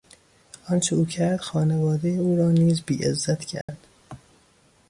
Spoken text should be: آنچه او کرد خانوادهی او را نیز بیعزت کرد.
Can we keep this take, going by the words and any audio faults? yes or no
no